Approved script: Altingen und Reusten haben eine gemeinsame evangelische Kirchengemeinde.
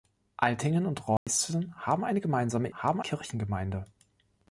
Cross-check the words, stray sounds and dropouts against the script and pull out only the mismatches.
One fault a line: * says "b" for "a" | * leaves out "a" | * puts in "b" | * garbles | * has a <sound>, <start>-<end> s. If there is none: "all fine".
* has a dropout, 1.2-1.3 s
* says "haben" for "evangelische"